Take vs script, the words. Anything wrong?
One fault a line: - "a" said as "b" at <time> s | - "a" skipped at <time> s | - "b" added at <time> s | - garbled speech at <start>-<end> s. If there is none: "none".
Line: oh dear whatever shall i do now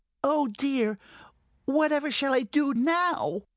none